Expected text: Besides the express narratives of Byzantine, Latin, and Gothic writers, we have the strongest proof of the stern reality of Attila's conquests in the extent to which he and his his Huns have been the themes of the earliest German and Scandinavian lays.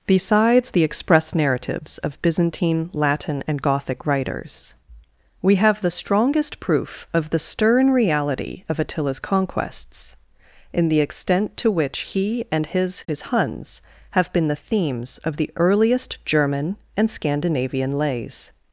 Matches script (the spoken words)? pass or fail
pass